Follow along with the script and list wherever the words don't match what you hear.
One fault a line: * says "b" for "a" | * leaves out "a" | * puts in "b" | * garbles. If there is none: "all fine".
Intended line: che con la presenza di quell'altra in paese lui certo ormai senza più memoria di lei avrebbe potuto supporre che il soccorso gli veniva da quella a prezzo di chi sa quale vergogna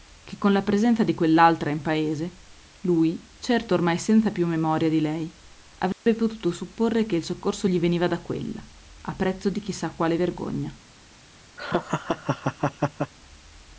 all fine